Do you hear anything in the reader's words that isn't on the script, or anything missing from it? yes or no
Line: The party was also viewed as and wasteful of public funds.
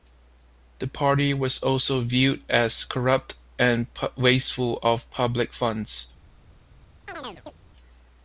yes